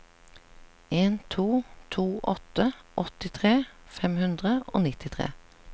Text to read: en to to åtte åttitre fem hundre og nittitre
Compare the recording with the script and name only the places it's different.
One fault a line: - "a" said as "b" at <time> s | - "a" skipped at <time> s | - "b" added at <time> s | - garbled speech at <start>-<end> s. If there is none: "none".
none